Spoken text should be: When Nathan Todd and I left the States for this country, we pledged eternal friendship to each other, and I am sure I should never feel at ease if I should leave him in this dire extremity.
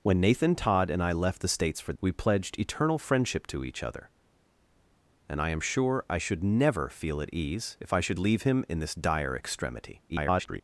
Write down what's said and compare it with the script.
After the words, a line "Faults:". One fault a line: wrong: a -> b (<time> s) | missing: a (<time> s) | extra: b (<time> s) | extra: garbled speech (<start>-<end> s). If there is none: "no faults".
When Nathan Todd and I left the States for we pledged eternal friendship to each other, and I am sure I should never feel at ease if I should leave him in this dire extremity. [garbled]
Faults:
missing: this country (1.9 s)
extra: garbled speech (10.1-10.6 s)